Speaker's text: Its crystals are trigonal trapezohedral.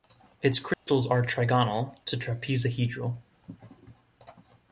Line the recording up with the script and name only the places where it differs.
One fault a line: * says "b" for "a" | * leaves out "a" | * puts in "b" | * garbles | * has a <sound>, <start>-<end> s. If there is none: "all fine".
* has a dropout, 0.7-0.9 s
* puts in "to"